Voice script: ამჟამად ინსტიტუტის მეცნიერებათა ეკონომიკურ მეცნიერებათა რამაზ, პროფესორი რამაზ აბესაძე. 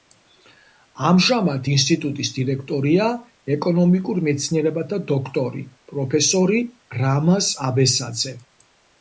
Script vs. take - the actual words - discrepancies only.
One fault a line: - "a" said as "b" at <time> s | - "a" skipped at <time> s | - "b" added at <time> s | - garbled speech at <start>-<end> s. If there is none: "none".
- "მეცნიერებათა" said as "დირექტორია" at 2.4 s
- "რამაზ" said as "დოქტორი" at 5.1 s